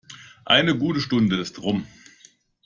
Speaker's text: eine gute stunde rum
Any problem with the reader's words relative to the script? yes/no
yes